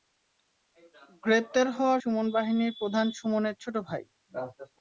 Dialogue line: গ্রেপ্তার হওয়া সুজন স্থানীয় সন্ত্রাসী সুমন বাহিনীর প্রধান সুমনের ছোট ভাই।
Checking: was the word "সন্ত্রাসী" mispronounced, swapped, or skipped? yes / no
yes